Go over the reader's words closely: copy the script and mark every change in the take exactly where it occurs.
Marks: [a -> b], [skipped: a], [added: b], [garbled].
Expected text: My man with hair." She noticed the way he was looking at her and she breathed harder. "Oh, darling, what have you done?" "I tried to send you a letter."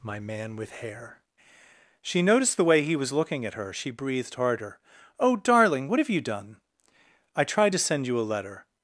My man with hair." She noticed the way he was looking at her [skipped: and] she breathed harder. "Oh, darling, what have you done?" "I tried to send you a letter."